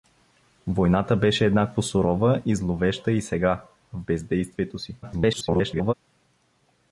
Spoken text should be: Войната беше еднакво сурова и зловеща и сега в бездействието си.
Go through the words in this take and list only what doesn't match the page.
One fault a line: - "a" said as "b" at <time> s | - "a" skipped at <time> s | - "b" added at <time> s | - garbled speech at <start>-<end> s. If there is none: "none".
- garbled speech at 5.0-5.9 s